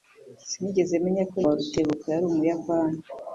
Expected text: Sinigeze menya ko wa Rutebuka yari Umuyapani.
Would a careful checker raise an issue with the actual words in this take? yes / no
no